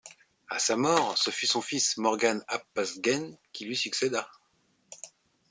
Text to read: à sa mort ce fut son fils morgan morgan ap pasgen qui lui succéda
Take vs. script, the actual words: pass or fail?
fail